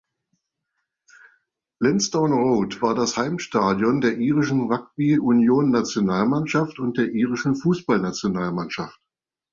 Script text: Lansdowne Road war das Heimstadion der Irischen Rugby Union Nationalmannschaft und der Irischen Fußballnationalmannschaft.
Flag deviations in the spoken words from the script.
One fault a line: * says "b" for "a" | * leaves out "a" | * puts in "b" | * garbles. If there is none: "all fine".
all fine